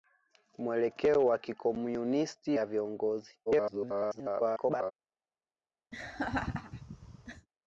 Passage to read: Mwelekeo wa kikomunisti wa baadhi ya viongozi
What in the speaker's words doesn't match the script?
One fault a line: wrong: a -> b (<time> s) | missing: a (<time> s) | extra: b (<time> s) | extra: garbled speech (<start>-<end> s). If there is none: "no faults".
missing: wa baadhi (2.6 s)
extra: garbled speech (3.5-4.9 s)